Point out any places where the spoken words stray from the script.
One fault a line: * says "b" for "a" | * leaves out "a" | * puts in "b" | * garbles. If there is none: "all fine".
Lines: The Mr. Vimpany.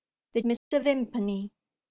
all fine